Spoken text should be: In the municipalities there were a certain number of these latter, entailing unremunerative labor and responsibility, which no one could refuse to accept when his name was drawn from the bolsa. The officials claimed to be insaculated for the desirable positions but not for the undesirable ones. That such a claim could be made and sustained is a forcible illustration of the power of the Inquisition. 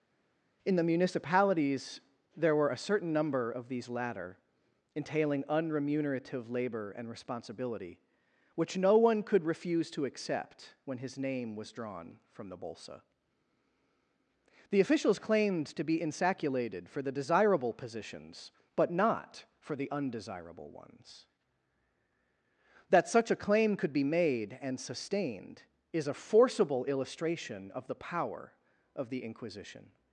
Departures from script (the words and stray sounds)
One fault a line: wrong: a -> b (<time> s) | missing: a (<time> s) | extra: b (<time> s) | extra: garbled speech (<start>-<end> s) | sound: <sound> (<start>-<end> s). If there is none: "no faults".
no faults